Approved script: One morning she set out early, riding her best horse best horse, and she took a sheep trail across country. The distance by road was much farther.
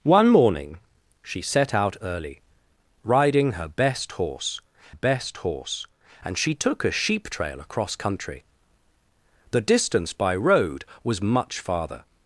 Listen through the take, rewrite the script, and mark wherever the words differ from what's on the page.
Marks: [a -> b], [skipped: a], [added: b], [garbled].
One morning she set out early, riding her best horse best horse, and she took a sheep trail across country. The distance by road was much farther.